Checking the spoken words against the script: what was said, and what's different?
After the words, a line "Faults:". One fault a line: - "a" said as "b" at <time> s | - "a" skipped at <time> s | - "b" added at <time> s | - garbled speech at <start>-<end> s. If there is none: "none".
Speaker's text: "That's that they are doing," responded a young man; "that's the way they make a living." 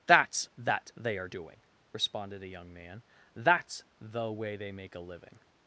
"That's that they are doing," responded a young man; "that's the way they make a living."
Faults:
none